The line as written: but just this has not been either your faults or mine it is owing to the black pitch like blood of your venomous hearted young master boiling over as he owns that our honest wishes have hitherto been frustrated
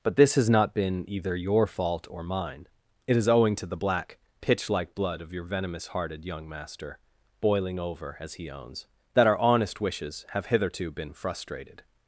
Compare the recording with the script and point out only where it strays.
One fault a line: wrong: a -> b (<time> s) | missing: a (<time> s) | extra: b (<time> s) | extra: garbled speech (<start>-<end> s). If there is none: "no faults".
missing: just (0.1 s)
wrong: faults -> fault (1.7 s)